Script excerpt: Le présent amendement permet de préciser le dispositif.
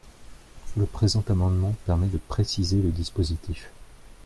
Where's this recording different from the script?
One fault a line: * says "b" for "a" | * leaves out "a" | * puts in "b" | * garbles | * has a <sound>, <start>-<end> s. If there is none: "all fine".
all fine